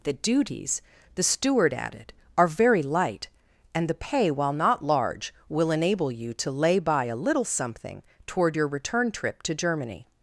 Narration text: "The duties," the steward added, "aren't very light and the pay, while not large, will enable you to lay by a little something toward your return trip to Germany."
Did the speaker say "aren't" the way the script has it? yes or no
no